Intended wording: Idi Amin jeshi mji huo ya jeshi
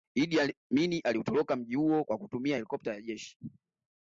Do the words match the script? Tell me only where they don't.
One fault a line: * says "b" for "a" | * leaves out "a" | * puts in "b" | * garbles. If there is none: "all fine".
* says "aliutoroka" for "jeshi"
* puts in "kwa kutumia helikopta"